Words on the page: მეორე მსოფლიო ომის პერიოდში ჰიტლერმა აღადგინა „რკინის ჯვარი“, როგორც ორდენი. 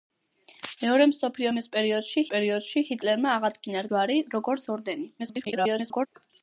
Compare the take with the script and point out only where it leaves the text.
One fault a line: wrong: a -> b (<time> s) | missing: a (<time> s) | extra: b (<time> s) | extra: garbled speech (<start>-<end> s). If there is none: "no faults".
extra: პერიოდში (2.3 s)
missing: რკინის (3.9 s)
extra: garbled speech (5.2-6.1 s)